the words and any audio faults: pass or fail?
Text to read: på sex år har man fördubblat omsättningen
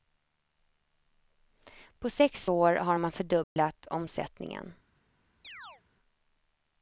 fail